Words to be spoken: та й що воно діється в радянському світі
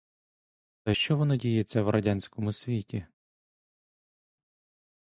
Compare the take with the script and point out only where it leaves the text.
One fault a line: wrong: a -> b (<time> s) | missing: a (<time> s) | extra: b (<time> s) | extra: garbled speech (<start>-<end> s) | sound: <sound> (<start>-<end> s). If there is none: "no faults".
no faults